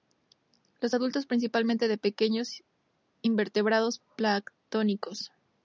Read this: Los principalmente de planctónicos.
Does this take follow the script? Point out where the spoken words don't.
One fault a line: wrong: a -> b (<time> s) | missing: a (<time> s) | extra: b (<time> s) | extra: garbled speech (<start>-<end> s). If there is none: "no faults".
extra: adultos (0.9 s)
extra: pequeños invertebrados (2.0 s)